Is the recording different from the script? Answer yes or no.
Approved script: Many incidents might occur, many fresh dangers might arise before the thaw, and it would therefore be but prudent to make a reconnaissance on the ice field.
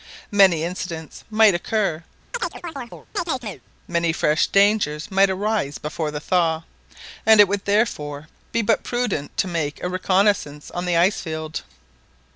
no